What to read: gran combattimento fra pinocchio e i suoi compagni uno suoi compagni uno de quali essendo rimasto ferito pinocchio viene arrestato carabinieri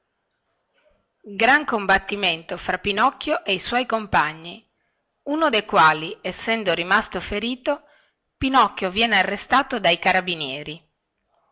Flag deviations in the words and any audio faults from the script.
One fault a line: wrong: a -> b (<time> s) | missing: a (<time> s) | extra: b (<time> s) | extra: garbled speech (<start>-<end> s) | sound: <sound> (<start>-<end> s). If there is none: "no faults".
missing: suoi compagni uno (5.5 s)
extra: dai (9.8 s)